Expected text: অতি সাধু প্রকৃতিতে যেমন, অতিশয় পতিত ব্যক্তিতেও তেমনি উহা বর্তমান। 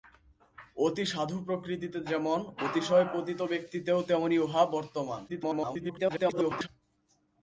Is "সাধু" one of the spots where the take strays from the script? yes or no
no